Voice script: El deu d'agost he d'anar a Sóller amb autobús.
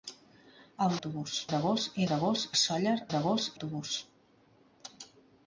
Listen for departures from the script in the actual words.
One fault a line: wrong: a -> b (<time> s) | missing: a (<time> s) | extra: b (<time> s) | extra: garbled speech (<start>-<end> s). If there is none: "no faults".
wrong: deu -> autobús (1.0 s)
wrong: d'anar -> d'agost (2.1 s)
wrong: amb -> d'agost (3.1 s)